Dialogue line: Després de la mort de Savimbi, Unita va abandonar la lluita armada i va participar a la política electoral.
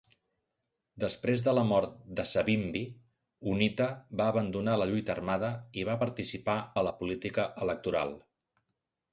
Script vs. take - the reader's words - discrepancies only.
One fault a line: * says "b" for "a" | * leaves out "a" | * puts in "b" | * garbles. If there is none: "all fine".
all fine